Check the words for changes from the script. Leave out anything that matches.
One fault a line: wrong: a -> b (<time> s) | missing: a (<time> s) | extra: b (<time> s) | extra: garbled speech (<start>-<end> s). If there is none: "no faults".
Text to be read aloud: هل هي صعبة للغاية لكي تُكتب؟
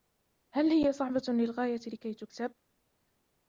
no faults